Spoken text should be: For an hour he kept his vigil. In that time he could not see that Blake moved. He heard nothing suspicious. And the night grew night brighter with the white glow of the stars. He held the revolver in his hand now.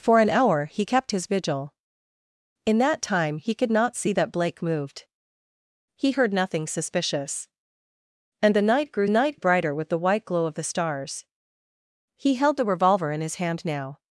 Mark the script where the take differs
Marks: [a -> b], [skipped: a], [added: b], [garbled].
For an hour he kept his vigil. In that time he could not see that Blake moved. He heard nothing suspicious. And the night grew night brighter with the white glow of the stars. He held the revolver in his hand now.